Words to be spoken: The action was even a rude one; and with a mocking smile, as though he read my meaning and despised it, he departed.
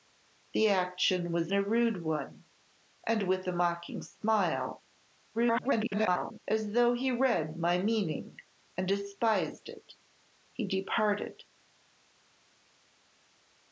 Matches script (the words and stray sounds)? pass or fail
fail